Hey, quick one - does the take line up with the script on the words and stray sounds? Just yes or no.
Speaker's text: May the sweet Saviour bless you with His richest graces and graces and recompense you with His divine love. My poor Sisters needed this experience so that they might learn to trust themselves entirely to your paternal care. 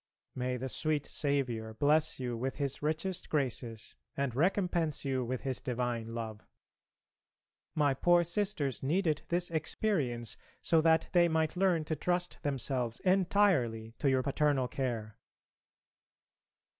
no